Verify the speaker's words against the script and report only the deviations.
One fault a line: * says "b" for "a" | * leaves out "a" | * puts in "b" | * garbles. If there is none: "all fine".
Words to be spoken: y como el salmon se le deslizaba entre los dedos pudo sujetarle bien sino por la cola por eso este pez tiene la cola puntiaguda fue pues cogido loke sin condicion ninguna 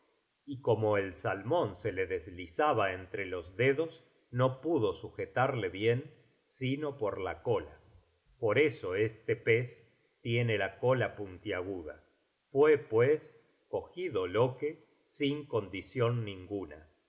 * puts in "no"